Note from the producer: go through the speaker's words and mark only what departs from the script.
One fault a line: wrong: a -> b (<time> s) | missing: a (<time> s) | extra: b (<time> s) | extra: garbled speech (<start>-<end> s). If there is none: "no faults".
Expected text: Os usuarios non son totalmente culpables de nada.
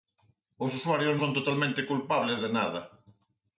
missing: non (1.1 s)